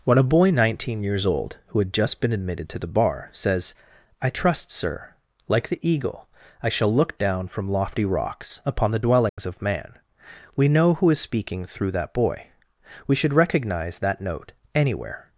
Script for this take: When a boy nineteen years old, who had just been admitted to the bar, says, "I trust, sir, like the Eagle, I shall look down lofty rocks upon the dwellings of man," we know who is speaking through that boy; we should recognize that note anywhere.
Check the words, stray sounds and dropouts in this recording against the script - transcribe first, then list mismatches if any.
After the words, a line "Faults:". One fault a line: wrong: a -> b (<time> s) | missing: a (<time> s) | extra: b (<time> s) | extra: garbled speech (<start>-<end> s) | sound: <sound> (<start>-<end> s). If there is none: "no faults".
When a boy nineteen years old, who had just been admitted to the bar, says, "I trust, sir, like the Eagle, I shall look down from lofty rocks upon the dwellings of man," we know who is speaking through that boy; we should recognize that note anywhere.
Faults:
extra: from (7.5 s)
sound: dropout (9.3-9.4 s)